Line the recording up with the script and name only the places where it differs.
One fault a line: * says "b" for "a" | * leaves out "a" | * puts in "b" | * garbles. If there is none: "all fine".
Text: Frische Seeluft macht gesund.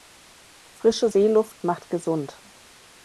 all fine